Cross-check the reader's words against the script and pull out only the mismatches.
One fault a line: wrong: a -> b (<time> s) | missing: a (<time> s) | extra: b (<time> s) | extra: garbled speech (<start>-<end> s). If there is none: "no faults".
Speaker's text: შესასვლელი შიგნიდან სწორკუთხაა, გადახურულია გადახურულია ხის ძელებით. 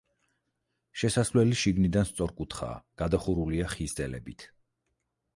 missing: გადახურულია (3.7 s)